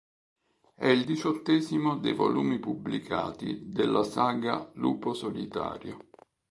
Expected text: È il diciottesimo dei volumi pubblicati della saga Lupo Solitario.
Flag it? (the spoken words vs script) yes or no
no